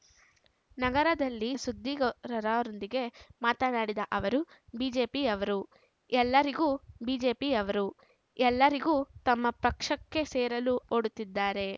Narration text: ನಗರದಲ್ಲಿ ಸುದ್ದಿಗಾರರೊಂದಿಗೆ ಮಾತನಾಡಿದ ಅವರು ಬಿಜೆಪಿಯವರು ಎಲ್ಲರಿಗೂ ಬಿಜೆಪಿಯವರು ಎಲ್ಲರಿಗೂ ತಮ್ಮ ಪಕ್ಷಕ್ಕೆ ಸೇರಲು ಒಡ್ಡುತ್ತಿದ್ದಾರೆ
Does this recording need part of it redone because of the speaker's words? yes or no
no